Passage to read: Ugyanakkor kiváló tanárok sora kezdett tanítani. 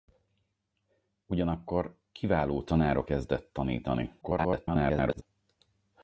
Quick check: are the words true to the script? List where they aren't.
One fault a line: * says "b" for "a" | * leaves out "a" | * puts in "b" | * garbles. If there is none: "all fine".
* leaves out "sora"
* garbles